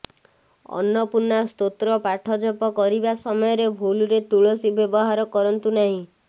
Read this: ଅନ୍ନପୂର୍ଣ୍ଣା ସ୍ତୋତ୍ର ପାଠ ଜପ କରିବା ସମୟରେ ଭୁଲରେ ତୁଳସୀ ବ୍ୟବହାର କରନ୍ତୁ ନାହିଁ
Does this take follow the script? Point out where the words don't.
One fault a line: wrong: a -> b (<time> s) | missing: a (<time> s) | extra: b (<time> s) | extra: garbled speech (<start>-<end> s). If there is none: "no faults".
no faults